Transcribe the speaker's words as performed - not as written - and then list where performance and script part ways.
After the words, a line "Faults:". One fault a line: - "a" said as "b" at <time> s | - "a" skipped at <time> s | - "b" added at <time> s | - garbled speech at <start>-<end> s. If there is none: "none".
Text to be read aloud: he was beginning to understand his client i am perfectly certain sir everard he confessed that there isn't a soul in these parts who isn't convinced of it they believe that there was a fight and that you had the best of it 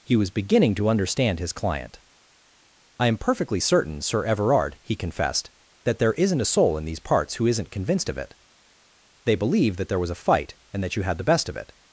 he was beginning to understand his client i am perfectly certain sir everard he confessed that there isn't a soul in these parts who isn't convinced of it they believe that there was a fight and that you had the best of it
Faults:
none